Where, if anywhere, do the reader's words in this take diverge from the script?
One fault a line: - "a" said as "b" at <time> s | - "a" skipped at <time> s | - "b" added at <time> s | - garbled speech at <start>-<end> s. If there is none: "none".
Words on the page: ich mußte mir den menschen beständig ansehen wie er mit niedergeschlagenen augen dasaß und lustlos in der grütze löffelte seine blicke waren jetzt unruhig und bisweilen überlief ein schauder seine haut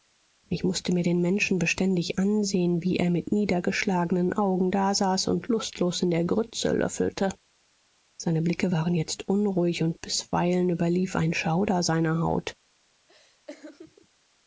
none